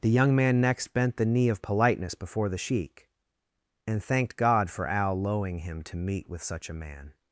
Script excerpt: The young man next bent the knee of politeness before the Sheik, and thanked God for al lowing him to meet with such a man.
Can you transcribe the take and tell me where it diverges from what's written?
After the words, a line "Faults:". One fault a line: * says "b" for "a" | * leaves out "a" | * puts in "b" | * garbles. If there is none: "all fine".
The young man next bent the knee of politeness before the Sheik, and thanked God for al lowing him to meet with such a man.
Faults:
all fine